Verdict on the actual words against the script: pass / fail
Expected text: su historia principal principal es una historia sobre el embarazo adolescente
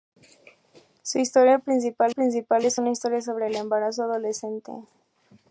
pass